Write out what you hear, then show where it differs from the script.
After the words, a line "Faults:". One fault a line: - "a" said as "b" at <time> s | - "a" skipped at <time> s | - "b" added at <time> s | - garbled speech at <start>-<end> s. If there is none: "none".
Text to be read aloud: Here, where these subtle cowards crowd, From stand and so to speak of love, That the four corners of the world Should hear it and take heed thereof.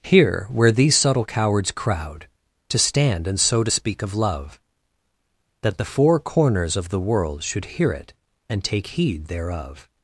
Here, where these subtle cowards crowd, To stand and so to speak of love, That the four corners of the world Should hear it and take heed thereof.
Faults:
- "From" said as "To" at 2.7 s